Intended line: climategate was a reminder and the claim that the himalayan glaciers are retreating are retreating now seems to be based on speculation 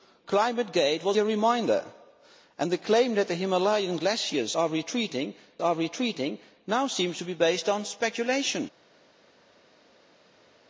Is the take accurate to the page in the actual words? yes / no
yes